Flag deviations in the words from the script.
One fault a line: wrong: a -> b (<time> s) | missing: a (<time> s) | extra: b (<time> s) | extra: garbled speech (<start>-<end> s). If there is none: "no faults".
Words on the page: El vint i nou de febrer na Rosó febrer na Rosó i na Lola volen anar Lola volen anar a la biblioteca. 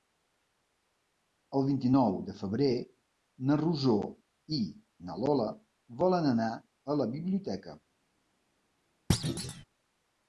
missing: febrer na Rosó (4.0 s)
missing: Lola volen anar (6.5 s)